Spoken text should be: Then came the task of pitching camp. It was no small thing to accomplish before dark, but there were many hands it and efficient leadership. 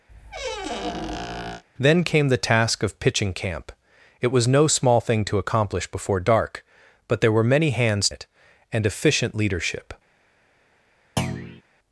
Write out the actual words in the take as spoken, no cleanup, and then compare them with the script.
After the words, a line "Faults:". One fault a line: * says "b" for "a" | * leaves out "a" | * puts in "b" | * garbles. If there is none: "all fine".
Then came the task of pitching camp. It was no small thing to accomplish before dark, but there were many hands it and efficient leadership.
Faults:
all fine